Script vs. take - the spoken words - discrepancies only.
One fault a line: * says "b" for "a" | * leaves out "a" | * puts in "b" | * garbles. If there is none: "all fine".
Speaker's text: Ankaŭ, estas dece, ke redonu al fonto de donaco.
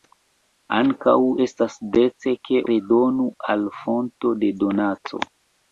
all fine